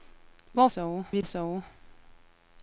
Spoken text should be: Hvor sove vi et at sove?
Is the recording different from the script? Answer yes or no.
no